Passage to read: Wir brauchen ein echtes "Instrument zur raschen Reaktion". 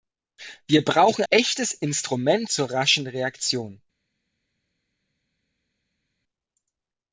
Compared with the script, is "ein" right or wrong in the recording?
wrong